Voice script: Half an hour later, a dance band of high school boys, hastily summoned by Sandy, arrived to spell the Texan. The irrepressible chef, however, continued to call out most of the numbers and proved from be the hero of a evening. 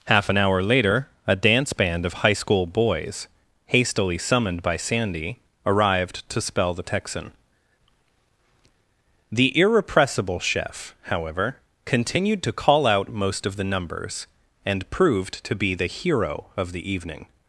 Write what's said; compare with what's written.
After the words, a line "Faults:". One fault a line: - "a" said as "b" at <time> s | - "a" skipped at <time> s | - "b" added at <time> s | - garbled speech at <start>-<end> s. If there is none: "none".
Half an hour later, a dance band of high school boys, hastily summoned by Sandy, arrived to spell the Texan. The irrepressible chef, however, continued to call out most of the numbers and proved to be the hero of the evening.
Faults:
- "from" said as "to" at 15.4 s
- "a" said as "the" at 16.7 s